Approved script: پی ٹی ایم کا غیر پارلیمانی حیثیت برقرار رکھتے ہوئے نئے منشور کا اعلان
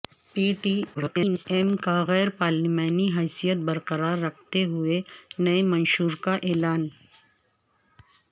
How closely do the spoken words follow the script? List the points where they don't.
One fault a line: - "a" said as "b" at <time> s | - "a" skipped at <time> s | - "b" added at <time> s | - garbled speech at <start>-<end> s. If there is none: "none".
- garbled speech at 0.9-1.5 s